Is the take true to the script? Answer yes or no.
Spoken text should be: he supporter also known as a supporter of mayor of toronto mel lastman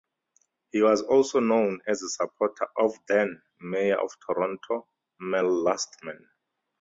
no